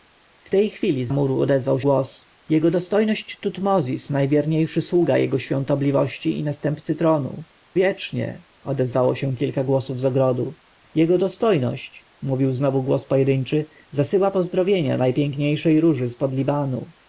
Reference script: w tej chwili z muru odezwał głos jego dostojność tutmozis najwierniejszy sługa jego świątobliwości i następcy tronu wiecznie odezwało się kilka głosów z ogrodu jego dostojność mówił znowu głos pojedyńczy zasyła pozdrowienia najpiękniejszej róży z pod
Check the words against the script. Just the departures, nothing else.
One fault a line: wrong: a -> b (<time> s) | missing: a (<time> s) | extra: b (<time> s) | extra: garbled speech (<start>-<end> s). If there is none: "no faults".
no faults